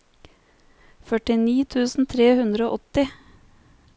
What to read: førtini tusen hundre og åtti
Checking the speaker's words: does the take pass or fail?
fail